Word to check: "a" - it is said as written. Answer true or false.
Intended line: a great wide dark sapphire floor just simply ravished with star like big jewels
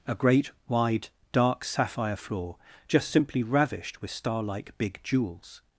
true